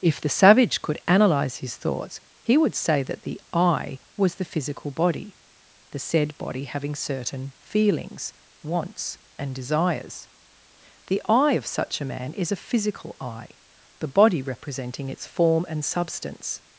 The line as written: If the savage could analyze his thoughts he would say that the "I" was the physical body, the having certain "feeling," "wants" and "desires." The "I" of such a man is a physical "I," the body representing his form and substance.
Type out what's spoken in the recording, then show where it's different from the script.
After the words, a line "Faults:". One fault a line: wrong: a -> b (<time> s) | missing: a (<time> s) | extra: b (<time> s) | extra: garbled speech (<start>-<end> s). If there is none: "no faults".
If the savage could analyze his thoughts he would say that the "I" was the physical body, the said body having certain "feelings," "wants" and "desires." The "I" of such a man is a physical "I," the body representing its form and substance.
Faults:
extra: said body (6.0 s)
wrong: feeling -> feelings (7.6 s)
wrong: his -> its (15.1 s)